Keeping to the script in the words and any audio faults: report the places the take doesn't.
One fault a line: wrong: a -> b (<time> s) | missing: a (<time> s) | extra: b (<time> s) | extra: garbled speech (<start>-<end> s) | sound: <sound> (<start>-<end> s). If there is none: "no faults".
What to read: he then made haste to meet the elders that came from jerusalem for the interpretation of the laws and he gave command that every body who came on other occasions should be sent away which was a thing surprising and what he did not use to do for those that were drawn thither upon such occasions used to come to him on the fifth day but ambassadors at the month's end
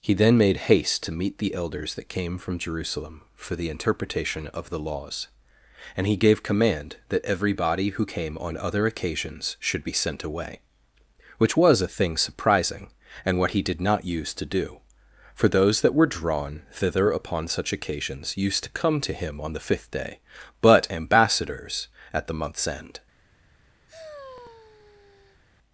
sound: sigh (23.9-25.4 s)